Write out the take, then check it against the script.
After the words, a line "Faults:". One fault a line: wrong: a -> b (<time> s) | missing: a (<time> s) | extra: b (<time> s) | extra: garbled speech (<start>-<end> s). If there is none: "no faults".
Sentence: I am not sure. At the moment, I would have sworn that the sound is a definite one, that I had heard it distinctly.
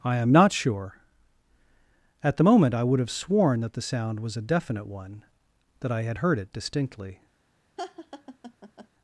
I am not sure. At the moment, I would have sworn that the sound was a definite one, that I had heard it distinctly.
Faults:
wrong: is -> was (4.2 s)